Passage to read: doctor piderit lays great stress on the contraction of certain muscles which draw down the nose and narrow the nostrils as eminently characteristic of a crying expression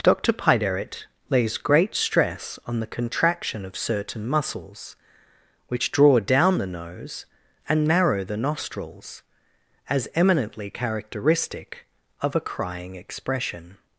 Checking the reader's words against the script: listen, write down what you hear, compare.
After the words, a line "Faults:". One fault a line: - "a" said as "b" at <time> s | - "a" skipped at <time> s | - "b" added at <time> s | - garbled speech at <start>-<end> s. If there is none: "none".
doctor piderit lays great stress on the contraction of certain muscles which draw down the nose and narrow the nostrils as eminently characteristic of a crying expression
Faults:
none